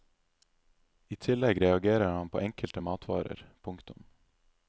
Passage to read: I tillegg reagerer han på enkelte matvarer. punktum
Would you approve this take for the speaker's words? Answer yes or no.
yes